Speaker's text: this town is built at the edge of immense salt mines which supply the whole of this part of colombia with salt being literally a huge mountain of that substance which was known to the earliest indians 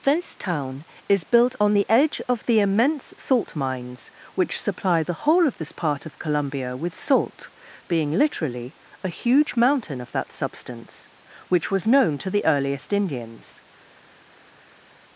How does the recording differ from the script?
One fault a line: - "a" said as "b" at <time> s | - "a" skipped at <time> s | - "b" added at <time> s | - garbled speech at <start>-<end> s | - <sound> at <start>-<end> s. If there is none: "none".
- "at" said as "on" at 1.6 s
- "the" added at 2.4 s